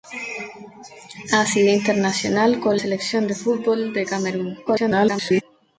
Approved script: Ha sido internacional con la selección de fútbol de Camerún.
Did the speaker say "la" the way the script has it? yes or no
no